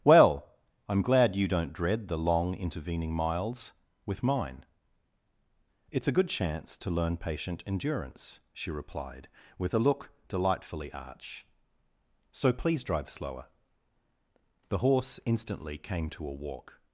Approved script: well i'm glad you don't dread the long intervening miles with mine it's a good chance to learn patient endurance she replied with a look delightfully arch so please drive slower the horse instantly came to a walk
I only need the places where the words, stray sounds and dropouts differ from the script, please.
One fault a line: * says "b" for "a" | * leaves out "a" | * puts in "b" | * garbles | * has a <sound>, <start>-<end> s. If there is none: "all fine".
all fine